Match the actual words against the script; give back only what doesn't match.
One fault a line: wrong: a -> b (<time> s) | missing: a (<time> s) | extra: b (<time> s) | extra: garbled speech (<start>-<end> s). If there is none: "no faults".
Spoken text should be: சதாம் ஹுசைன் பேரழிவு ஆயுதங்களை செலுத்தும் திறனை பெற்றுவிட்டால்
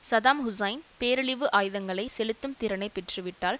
no faults